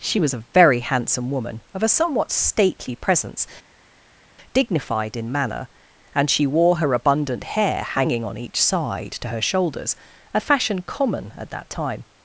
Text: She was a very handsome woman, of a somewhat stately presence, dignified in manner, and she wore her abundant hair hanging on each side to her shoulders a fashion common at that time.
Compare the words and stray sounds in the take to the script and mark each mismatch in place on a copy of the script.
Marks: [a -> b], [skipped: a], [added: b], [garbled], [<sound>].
She was a very handsome woman, of a somewhat stately presence, dignified in manner, and she wore her abundant hair hanging on each side to her shoulders a fashion common at that time.